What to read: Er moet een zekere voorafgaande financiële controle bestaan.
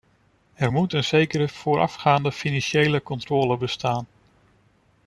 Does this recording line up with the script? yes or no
yes